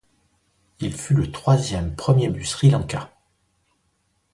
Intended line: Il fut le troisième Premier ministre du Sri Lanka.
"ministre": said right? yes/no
no